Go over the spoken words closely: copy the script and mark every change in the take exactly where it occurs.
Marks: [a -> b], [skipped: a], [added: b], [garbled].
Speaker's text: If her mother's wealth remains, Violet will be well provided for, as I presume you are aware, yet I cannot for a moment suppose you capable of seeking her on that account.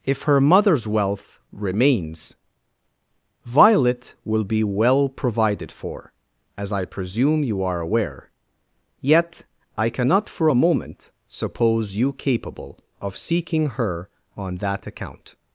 If her mother's wealth remains, Violet will be well provided for, as I presume you are aware, yet I cannot for a moment suppose you capable of seeking her on that account.